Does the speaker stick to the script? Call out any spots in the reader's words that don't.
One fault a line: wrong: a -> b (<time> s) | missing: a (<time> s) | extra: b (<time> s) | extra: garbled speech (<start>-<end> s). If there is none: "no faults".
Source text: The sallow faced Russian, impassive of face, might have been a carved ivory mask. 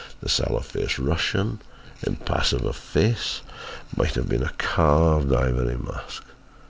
no faults